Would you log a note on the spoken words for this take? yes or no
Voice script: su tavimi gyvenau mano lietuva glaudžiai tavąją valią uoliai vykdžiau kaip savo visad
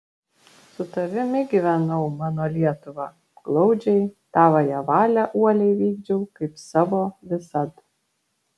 no